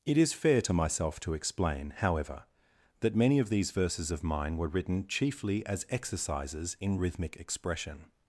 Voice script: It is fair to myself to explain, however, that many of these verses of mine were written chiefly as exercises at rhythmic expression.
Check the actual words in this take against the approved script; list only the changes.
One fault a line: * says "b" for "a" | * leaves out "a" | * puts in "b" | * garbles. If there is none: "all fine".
* says "in" for "at"